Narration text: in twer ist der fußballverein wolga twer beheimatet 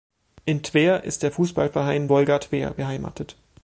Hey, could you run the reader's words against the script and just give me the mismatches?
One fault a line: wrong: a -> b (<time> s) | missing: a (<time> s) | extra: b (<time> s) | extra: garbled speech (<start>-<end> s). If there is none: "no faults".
no faults